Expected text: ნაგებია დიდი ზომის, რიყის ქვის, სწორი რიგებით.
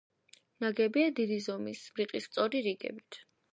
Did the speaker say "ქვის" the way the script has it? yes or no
no